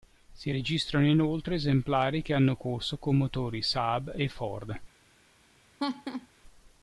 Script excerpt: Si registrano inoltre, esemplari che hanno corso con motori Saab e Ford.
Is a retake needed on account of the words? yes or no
no